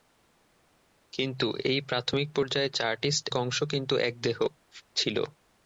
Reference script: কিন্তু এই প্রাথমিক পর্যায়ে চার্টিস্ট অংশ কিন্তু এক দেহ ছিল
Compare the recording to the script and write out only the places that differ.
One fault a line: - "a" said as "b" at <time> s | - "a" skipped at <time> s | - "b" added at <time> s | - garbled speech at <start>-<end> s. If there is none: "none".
none